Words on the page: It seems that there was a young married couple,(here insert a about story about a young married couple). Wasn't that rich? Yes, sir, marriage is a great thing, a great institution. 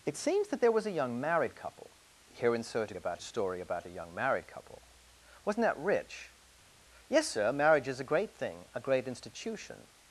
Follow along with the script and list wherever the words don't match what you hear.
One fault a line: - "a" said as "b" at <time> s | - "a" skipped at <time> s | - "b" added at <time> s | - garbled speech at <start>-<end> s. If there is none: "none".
none